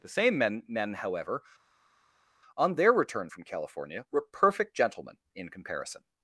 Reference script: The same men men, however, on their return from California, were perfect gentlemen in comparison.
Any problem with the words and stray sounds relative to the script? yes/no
no